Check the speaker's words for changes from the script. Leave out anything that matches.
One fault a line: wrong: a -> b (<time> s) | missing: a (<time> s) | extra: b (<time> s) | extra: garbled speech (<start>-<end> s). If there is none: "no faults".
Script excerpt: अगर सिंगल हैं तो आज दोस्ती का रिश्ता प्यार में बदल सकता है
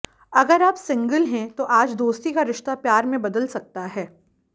extra: आप (0.6 s)